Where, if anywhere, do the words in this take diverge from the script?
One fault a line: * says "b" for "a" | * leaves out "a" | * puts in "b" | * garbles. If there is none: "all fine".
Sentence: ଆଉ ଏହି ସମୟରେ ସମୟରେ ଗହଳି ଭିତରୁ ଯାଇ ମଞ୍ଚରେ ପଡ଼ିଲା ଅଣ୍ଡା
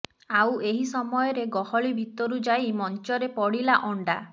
* leaves out "ସମୟରେ"